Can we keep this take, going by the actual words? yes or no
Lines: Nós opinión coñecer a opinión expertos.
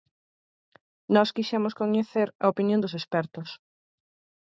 no